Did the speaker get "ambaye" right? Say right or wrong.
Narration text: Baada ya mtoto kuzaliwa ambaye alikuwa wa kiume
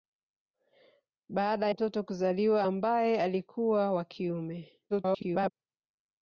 right